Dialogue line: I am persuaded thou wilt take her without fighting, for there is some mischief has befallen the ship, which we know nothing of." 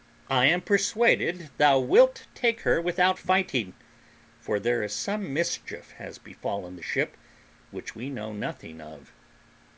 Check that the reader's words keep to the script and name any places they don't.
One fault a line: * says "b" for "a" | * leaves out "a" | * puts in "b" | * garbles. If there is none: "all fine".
all fine